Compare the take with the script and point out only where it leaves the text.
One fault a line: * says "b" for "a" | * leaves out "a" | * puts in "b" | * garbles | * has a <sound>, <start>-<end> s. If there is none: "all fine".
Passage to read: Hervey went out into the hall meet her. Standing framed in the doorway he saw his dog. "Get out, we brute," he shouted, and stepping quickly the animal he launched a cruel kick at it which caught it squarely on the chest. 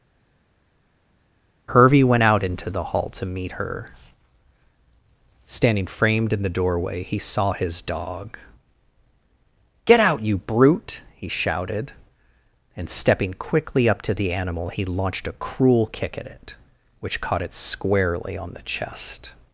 * puts in "to"
* says "you" for "we"
* puts in "up to"